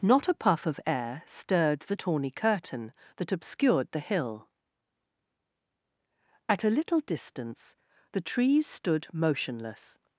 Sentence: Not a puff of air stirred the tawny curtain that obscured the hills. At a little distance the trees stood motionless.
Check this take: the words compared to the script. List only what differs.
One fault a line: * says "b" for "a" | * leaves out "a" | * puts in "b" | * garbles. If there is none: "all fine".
* says "hill" for "hills"